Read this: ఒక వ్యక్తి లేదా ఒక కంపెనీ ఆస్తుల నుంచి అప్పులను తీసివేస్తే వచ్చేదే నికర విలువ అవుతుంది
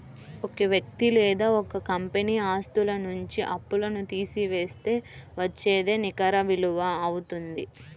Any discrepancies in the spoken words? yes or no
no